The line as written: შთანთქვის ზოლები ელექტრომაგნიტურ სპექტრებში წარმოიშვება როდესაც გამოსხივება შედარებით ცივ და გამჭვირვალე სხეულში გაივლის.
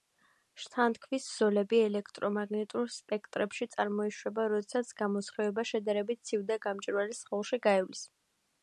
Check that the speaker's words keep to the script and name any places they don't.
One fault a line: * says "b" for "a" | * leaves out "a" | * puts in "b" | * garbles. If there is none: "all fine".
all fine